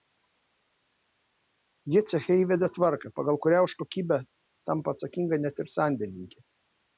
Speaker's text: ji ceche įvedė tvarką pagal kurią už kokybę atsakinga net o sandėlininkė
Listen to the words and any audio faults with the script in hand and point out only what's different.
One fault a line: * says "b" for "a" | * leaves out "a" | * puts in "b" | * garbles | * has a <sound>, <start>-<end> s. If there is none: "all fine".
* puts in "tampa"
* says "ir" for "o"